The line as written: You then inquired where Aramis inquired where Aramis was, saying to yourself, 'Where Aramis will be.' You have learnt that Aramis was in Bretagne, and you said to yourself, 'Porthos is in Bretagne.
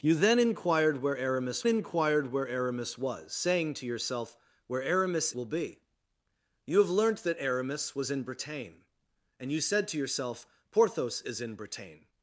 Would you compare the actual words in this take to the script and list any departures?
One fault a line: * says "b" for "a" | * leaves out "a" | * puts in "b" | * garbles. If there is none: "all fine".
all fine